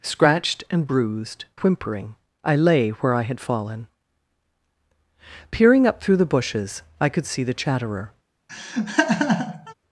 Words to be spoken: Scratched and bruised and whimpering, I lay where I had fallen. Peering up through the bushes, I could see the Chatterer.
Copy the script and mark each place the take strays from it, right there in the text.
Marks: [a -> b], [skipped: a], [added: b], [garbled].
Scratched and bruised [skipped: and] whimpering, I lay where I had fallen. Peering up through the bushes, I could see the Chatterer.